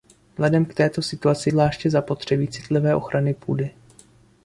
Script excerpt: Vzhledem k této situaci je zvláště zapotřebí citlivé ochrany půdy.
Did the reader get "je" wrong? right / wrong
wrong